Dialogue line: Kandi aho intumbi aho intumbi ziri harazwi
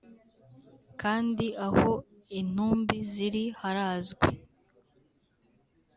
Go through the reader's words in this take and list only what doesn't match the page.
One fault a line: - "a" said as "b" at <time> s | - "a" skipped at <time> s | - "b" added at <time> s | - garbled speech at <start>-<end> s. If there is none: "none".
- "aho intumbi" skipped at 3.0 s